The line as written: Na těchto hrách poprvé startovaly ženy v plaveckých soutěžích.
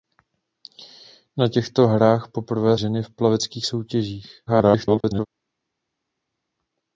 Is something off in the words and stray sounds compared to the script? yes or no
yes